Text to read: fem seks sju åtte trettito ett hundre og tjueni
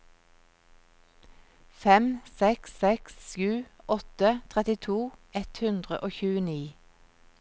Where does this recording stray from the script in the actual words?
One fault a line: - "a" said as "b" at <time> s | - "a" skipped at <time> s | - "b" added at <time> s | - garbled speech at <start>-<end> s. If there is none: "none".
- "seks" added at 2.8 s